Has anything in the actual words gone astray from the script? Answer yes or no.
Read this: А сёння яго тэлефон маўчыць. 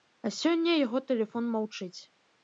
no